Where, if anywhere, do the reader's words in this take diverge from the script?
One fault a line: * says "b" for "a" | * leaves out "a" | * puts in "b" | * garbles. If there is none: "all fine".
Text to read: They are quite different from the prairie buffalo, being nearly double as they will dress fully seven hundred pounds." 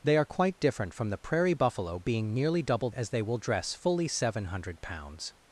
all fine